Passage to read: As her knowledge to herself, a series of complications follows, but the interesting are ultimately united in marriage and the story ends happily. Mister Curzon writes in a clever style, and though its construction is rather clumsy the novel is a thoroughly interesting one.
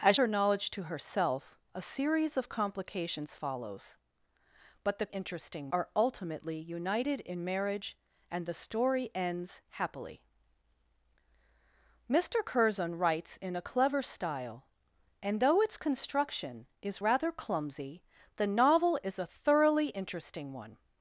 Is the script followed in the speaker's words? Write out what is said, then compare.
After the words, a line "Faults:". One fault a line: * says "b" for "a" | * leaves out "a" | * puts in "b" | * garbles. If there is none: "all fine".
As her knowledge to herself, a series of complications follows, but the interesting are ultimately united in marriage and the story ends happily. Mister Curzon writes in a clever style, and though its construction is rather clumsy the novel is a thoroughly interesting one.
Faults:
all fine